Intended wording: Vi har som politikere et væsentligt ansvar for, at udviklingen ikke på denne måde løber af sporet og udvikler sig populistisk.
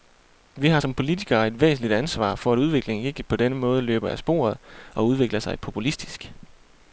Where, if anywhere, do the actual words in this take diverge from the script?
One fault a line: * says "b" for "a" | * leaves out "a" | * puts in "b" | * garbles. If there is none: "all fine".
all fine